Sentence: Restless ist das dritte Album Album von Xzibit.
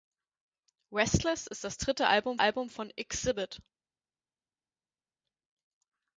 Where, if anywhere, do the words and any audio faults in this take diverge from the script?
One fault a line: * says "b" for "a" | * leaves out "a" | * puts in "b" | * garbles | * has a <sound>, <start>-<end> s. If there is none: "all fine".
all fine